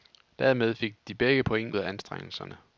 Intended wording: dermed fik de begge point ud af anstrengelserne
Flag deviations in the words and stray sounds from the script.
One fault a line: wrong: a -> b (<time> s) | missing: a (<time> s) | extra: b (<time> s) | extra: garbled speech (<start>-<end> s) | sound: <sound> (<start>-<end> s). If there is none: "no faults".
missing: ud (1.7 s)